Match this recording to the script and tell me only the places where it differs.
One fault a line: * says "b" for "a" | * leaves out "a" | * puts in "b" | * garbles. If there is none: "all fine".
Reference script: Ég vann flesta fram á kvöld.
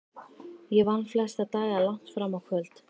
* puts in "daga langt"